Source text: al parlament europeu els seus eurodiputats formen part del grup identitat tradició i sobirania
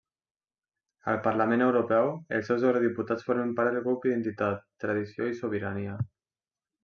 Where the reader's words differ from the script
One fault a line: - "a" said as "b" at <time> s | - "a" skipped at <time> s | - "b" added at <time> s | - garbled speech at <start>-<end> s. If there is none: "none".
none